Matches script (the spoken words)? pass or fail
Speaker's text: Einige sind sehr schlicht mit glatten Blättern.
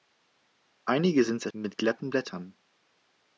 fail